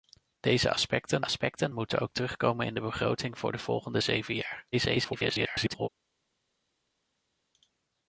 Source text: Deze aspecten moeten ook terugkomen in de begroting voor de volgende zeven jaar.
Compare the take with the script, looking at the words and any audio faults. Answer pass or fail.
fail